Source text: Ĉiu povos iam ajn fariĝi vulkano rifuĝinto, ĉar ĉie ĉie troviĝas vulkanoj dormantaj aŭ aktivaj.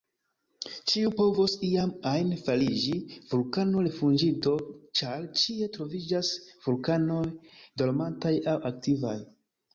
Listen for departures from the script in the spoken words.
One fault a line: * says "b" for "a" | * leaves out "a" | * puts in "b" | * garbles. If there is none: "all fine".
* leaves out "ĉie"